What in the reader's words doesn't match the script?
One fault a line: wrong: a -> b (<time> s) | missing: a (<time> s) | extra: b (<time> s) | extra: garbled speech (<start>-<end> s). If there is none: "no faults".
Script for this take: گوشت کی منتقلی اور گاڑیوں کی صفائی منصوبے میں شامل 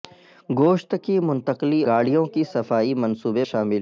missing: اور (1.8 s)
missing: میں (3.4 s)